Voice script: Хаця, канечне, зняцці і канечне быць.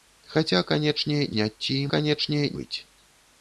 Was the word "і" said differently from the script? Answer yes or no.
no